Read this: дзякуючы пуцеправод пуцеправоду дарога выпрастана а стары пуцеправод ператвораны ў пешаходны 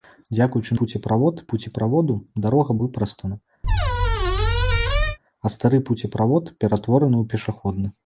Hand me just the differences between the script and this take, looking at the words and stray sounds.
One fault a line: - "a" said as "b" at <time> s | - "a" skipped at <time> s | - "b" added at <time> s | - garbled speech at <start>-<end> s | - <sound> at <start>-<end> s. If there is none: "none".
- squeak at 3.6-5.2 s